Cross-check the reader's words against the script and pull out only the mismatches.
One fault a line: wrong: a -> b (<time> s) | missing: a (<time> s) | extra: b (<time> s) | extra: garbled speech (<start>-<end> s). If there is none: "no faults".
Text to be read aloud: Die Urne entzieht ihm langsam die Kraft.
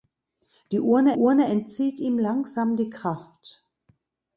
extra: Urne (1.1 s)